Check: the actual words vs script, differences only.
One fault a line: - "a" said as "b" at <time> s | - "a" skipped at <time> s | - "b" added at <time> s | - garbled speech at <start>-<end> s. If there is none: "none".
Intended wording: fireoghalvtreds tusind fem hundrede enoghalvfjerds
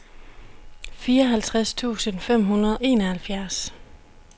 none